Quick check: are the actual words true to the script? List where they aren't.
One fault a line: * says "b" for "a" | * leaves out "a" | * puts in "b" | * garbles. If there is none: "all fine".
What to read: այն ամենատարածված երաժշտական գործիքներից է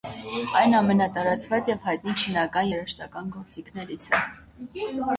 * puts in "և հայտնի չինական"